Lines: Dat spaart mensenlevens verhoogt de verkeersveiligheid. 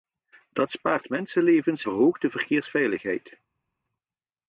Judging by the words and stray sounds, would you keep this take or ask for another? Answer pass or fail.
pass